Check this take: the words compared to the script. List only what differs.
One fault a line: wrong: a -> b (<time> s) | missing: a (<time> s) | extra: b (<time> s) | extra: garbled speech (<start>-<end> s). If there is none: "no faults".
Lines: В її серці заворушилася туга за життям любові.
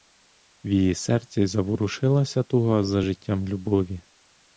no faults